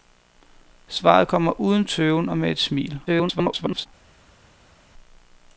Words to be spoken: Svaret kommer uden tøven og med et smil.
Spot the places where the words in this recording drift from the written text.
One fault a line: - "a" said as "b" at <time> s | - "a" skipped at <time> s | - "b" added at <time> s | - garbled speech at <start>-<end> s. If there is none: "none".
- garbled speech at 3.1-3.9 s